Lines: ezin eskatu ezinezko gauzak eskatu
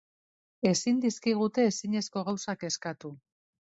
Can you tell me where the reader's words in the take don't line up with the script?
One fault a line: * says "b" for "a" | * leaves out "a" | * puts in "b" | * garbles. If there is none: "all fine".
* says "dizkigute" for "eskatu"